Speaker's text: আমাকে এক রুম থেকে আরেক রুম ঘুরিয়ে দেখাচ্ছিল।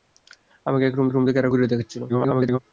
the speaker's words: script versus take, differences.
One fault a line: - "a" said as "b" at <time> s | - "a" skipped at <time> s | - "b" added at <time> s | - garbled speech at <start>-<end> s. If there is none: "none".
- "রুম" added at 1.1 s
- "রুম" skipped at 1.5 s
- garbled speech at 2.1-2.6 s